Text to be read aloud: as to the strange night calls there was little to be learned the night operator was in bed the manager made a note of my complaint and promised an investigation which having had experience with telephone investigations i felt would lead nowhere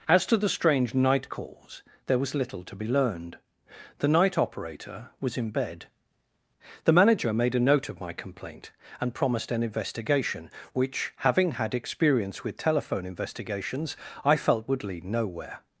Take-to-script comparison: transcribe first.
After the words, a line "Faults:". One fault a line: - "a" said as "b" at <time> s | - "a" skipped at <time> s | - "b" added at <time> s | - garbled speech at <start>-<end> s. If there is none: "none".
as to the strange night calls there was little to be learned the night operator was in bed the manager made a note of my complaint and promised an investigation which having had experience with telephone investigations i felt would lead nowhere
Faults:
none